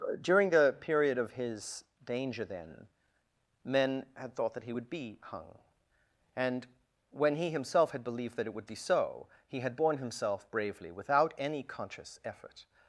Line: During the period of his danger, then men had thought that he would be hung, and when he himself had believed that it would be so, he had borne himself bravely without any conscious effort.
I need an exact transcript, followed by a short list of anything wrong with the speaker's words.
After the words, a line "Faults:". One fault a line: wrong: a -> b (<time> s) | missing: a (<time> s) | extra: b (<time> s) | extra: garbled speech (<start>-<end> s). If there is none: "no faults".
During the period of his danger, then men had thought that he would be hung, and when he himself had believed that it would be so, he had borne himself bravely without any conscious effort.
Faults:
no faults